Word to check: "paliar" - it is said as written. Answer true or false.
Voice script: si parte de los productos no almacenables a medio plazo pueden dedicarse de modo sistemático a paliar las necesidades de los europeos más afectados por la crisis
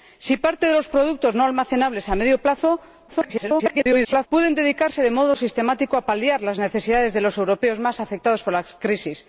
true